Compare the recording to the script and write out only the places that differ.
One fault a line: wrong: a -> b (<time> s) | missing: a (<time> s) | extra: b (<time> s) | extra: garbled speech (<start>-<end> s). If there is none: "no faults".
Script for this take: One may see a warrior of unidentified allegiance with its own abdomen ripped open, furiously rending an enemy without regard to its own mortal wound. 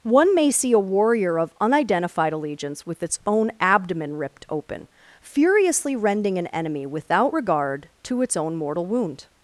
no faults